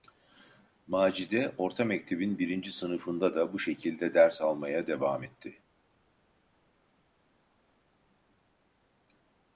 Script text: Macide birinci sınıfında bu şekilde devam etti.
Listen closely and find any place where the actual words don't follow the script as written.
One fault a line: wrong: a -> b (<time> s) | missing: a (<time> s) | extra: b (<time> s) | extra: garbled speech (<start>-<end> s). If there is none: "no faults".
extra: orta mektebin (1.6 s)
extra: da (3.4 s)
extra: ders almaya (4.1 s)